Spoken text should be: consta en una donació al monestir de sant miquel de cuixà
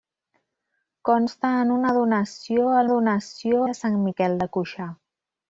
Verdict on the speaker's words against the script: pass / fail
fail